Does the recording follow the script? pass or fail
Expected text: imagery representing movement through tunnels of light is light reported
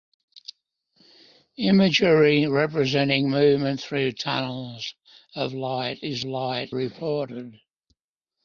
pass